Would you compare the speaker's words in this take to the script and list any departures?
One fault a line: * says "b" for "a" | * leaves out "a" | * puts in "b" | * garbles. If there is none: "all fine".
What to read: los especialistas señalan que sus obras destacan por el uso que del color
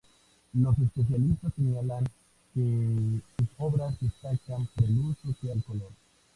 all fine